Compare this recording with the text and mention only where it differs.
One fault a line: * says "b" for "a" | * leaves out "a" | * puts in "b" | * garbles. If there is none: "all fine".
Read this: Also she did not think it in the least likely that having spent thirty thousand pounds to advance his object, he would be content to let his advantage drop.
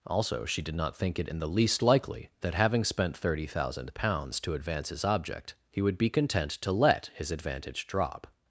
all fine